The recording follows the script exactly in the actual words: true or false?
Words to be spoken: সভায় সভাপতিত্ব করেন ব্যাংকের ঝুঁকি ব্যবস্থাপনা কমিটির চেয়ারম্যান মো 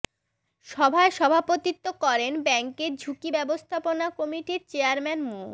true